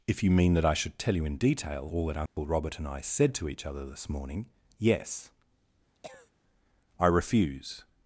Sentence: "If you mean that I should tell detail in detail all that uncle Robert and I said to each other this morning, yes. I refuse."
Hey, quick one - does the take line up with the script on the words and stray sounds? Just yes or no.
no